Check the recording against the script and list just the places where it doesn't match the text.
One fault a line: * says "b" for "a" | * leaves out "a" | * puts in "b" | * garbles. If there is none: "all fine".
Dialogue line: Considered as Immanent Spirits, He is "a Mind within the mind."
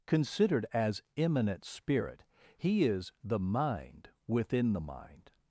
* says "Spirit" for "Spirits"
* says "the" for "a"